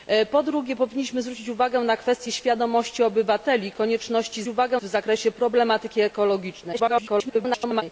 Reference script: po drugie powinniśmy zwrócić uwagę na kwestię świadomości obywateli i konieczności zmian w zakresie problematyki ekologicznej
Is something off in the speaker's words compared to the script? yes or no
yes